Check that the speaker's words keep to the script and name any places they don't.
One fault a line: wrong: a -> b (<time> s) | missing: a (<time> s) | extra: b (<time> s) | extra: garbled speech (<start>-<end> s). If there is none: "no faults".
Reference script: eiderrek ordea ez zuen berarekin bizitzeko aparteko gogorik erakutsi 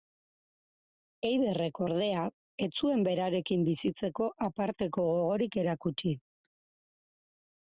no faults